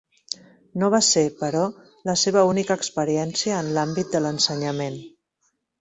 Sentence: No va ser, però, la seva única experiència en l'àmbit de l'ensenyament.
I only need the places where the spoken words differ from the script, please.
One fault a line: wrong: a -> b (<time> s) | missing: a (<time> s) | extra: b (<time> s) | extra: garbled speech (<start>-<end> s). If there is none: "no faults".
no faults